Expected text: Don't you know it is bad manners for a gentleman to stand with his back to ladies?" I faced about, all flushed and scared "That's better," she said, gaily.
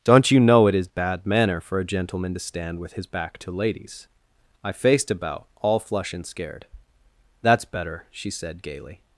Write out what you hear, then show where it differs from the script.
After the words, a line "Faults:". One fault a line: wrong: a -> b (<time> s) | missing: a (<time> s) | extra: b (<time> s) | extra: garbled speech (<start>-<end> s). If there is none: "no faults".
Don't you know it is bad manner for a gentleman to stand with his back to ladies?" I faced about, all flush and scared "That's better," she said, gaily.
Faults:
wrong: manners -> manner (1.2 s)
wrong: flushed -> flush (5.8 s)